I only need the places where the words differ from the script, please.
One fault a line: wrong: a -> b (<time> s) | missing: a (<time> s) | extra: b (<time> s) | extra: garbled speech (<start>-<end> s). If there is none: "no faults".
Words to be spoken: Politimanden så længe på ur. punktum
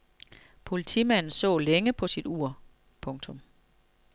extra: sit (2.1 s)